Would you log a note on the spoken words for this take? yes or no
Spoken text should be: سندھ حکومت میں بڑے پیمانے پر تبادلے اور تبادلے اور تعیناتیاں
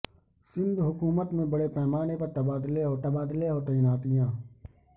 no